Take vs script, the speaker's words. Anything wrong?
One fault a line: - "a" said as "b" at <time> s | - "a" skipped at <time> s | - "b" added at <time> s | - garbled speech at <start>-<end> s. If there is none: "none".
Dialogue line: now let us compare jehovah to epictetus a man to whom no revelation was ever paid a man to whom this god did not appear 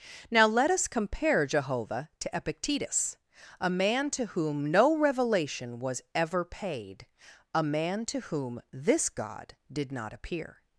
none